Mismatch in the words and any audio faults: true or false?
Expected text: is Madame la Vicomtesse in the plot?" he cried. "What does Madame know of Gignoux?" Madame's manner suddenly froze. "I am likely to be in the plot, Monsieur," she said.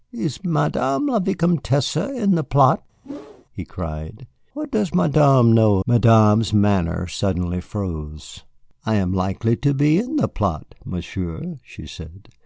true